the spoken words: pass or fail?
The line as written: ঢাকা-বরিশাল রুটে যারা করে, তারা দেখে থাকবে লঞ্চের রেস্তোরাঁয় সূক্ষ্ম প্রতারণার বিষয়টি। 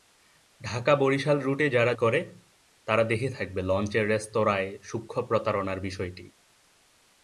pass